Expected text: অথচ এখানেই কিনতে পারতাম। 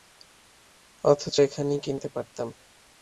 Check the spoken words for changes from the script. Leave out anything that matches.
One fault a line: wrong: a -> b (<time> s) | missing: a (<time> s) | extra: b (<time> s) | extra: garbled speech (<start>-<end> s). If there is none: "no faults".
no faults